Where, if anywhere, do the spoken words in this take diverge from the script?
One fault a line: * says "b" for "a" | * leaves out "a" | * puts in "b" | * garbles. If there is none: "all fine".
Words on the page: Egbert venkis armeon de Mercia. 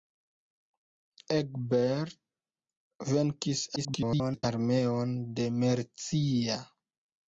* garbles